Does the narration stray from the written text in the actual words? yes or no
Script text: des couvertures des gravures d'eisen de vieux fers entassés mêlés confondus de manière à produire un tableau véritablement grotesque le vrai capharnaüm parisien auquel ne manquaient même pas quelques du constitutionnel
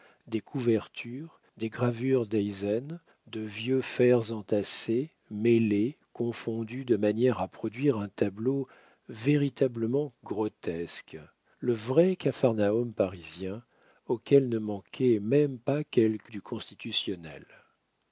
no